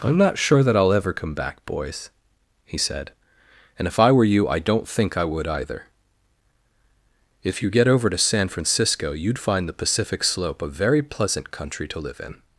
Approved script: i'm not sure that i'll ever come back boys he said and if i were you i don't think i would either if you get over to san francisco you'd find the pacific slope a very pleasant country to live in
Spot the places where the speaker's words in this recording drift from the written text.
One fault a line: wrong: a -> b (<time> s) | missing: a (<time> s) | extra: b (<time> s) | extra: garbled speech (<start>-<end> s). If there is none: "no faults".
no faults